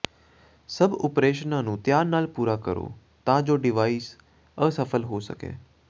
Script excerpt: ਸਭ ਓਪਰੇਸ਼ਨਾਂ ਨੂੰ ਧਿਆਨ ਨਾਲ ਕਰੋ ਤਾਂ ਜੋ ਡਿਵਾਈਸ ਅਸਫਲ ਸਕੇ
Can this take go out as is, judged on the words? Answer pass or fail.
fail